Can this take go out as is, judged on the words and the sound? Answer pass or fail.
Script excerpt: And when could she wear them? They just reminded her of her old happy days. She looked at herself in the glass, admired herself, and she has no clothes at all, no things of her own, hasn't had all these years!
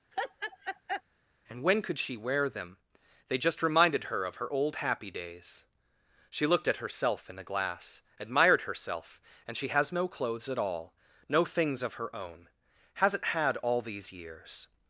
fail